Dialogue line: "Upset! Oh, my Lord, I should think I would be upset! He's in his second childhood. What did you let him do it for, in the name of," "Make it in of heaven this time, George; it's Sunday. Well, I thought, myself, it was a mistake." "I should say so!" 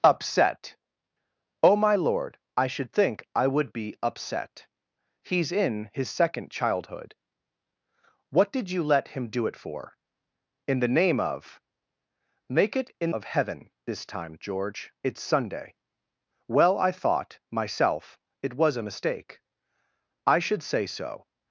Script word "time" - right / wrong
right